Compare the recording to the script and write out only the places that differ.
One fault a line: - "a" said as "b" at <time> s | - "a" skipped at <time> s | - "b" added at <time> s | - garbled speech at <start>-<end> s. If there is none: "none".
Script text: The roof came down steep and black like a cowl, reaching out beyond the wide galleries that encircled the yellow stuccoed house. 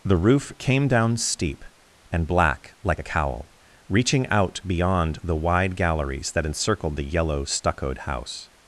none